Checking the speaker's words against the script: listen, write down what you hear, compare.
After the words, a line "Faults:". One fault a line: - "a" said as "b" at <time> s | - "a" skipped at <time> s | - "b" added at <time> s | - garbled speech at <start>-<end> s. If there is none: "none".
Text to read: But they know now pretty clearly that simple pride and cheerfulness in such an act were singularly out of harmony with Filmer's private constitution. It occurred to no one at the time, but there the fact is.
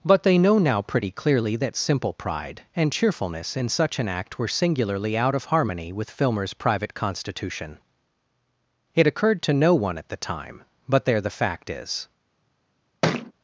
But they know now pretty clearly that simple pride and cheerfulness in such an act were singularly out of harmony with Filmer's private constitution. It occurred to no one at the time, but there the fact is.
Faults:
none